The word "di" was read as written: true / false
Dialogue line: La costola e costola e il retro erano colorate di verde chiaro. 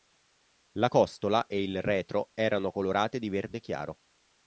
true